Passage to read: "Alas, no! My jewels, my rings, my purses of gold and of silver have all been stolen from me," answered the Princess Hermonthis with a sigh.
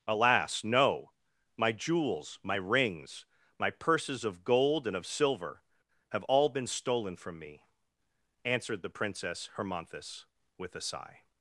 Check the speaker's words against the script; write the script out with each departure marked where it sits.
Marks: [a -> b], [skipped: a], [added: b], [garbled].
"Alas, no! My jewels, my rings, my purses of gold and of silver have all been stolen from me," answered the Princess Hermonthis with a sigh.